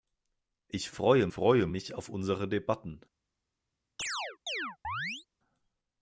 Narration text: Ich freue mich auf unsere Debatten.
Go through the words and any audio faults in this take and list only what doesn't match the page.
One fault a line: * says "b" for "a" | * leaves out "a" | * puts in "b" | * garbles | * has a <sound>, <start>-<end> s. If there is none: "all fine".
* puts in "freue"
* has a chirp, 4.0-5.3 s